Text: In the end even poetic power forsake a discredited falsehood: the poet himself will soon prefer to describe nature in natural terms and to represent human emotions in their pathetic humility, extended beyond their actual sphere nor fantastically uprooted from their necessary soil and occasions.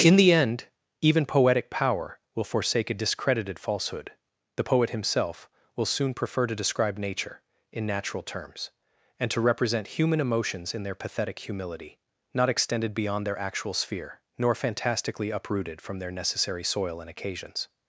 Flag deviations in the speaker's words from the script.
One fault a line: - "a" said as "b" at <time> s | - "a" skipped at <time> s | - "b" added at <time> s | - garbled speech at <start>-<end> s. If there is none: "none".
- "will" added at 2.3 s
- "not" added at 12.3 s